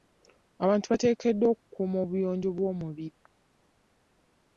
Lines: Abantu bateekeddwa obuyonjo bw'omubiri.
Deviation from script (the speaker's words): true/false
true